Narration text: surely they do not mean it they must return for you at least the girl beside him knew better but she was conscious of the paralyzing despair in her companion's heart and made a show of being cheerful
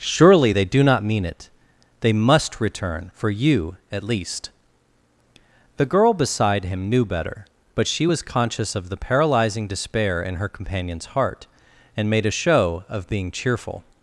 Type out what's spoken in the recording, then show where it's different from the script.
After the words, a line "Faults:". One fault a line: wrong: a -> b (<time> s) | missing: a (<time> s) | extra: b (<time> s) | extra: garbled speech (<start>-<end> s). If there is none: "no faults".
surely they do not mean it they must return for you at least the girl beside him knew better but she was conscious of the paralyzing despair in her companion's heart and made a show of being cheerful
Faults:
no faults